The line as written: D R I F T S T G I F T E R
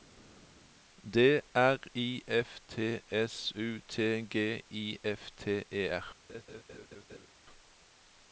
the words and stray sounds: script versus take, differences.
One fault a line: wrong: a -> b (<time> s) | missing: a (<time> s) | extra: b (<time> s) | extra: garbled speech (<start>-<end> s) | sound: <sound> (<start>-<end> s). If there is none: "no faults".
extra: U (3.5 s)
sound: laugh (6.3-7.3 s)